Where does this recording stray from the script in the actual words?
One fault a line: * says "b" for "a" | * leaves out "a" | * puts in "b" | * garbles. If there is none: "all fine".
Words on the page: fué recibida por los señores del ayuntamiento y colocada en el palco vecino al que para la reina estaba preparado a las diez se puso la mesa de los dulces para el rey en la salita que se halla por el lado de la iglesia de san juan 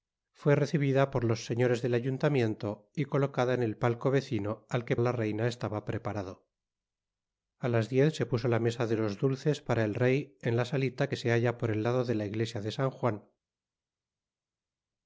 * leaves out "para"